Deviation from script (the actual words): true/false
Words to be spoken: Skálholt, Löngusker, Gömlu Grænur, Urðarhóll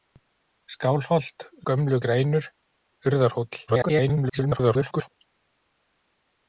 true